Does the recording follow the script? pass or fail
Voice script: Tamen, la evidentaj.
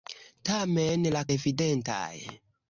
pass